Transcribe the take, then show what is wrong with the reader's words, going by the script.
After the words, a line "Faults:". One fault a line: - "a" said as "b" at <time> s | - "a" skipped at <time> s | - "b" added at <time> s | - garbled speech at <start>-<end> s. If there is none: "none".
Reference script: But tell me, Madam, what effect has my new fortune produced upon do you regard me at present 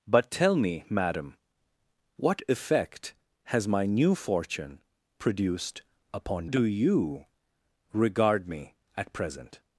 But tell me, Madam, what effect has my new fortune produced upon do you regard me at present
Faults:
none